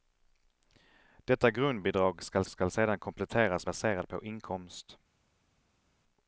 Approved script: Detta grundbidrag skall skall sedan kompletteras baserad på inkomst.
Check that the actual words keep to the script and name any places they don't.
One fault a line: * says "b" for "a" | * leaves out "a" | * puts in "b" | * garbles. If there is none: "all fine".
all fine